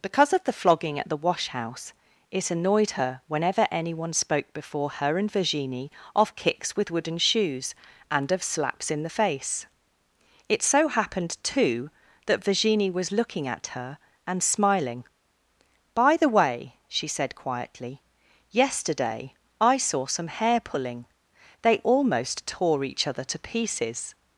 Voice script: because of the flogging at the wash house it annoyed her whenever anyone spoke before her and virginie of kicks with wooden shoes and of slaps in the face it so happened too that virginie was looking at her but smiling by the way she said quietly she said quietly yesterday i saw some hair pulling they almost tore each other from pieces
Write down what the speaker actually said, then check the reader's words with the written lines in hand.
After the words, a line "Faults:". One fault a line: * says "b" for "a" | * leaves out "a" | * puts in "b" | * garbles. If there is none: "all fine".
because of the flogging at the wash house it annoyed her whenever anyone spoke before her and virginie of kicks with wooden shoes and of slaps in the face it so happened too that virginie was looking at her and smiling by the way she said quietly yesterday i saw some hair pulling they almost tore each other to pieces
Faults:
* says "and" for "but"
* leaves out "she said quietly"
* says "to" for "from"